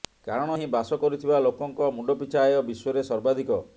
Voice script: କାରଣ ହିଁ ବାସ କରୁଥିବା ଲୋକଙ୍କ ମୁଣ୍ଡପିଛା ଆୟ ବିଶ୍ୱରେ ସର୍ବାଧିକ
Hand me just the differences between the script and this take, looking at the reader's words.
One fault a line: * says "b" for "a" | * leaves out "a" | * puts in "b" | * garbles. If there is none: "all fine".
all fine